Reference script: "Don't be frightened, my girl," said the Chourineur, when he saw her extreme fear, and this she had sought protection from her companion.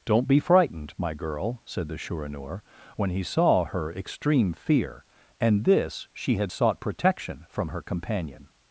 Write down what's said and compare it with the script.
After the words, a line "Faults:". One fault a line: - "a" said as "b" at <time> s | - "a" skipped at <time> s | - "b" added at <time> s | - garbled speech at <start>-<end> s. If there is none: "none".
"Don't be frightened, my girl," said the Chourineur, when he saw her extreme fear, and this she had sought protection from her companion.
Faults:
none